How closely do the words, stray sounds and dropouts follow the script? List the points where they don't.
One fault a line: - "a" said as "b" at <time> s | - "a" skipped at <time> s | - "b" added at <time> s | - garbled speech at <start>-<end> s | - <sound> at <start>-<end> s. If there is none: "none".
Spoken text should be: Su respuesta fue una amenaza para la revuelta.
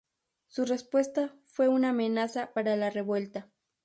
none